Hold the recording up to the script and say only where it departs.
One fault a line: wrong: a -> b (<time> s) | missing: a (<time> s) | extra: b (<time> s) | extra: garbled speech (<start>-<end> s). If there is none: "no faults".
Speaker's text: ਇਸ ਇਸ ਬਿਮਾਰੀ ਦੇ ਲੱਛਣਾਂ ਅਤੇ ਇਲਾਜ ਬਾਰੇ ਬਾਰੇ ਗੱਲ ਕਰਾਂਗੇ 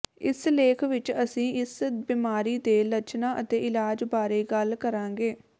extra: ਲੇਖ ਵਿਚ ਅਸੀਂ (0.5 s)
missing: ਬਾਰੇ (4.4 s)